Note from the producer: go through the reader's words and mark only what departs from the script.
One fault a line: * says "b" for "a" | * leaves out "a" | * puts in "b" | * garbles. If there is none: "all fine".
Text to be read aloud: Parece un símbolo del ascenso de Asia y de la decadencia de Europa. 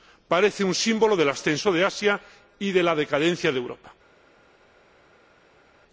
all fine